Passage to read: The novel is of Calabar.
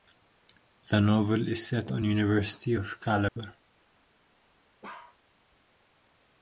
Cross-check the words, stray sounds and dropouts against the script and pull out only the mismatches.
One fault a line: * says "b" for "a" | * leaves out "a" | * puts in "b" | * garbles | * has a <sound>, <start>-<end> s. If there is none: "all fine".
* puts in "set on University"
* has a dropout, 3.3-3.4 s
* has a bark, 4.8-5.2 s